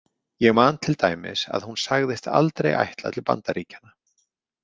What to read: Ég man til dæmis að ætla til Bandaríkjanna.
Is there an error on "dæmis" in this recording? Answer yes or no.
no